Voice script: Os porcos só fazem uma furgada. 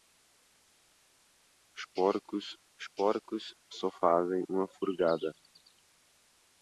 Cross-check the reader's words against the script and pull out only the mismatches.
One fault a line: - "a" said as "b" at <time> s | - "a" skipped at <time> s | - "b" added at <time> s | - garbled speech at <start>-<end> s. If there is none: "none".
- "os porcos" added at 2.8 s